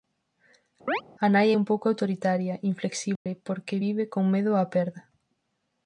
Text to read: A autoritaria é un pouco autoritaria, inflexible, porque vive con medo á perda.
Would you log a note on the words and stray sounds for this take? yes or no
yes